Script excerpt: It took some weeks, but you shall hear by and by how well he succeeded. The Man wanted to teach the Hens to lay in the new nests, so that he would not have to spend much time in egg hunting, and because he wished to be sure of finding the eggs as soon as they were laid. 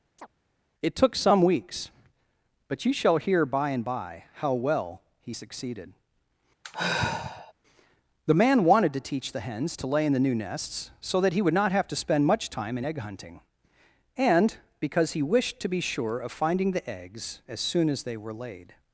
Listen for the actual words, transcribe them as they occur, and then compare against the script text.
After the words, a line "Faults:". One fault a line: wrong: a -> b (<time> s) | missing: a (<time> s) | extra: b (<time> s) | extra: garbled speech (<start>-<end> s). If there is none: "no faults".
It took some weeks, but you shall hear by and by how well he succeeded. The Man wanted to teach the Hens to lay in the new nests, so that he would not have to spend much time in egg hunting, and because he wished to be sure of finding the eggs as soon as they were laid.
Faults:
no faults